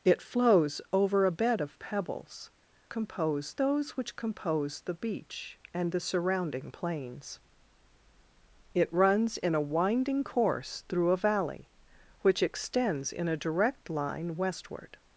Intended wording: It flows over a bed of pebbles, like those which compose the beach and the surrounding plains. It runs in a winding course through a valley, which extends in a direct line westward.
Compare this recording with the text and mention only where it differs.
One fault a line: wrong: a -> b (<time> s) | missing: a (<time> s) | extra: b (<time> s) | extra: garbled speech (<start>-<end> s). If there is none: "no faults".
wrong: like -> compose (2.9 s)